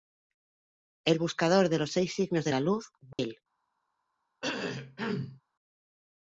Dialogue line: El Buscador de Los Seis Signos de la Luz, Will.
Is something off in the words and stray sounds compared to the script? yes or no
yes